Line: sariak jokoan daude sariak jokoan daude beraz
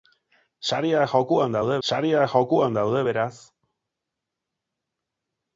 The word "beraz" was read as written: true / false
true